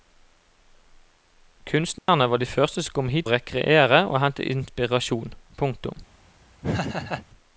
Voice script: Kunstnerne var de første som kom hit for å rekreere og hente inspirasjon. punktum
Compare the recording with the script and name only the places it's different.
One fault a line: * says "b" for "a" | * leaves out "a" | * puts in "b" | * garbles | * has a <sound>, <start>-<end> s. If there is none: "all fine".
* has a dropout, 2.0-2.1 s
* leaves out "for"
* has a laugh, 6.6-7.3 s